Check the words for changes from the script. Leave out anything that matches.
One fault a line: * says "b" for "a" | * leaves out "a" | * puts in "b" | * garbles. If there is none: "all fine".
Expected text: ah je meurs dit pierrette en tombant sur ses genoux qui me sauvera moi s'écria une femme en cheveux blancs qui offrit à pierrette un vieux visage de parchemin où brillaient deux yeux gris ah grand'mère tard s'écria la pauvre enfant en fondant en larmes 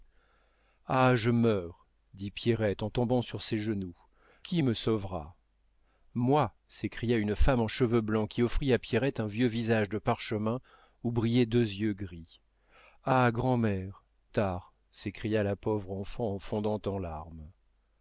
all fine